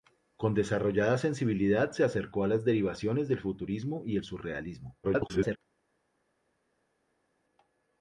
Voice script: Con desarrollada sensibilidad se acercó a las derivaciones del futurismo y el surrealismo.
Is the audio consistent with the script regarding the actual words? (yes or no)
no